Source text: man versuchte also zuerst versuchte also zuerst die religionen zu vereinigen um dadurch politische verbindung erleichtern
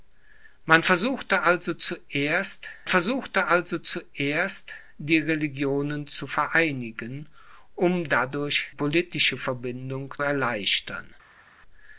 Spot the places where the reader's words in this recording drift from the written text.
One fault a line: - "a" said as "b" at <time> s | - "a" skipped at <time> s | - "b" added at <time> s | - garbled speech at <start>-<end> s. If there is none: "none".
none